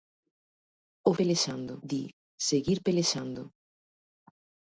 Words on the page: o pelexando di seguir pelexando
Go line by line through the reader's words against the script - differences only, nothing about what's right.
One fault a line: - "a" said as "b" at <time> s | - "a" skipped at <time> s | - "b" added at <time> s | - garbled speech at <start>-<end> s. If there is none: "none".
none